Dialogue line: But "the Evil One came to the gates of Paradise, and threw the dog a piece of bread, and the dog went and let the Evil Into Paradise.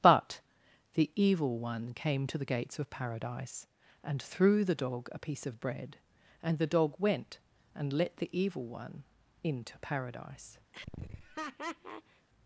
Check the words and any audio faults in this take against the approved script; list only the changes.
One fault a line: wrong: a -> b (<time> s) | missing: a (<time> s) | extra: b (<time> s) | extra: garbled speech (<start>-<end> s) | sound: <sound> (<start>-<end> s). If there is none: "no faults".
extra: One (8.7 s)
sound: laugh (10.7-12.3 s)